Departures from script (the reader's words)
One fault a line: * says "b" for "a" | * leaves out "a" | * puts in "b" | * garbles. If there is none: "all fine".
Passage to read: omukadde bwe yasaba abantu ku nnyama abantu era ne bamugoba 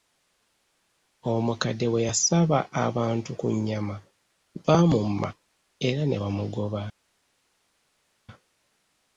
* says "baamumma" for "abantu"